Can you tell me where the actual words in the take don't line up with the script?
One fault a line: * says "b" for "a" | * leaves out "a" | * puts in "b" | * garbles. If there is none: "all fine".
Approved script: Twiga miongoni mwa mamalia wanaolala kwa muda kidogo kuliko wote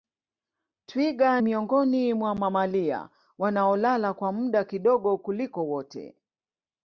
all fine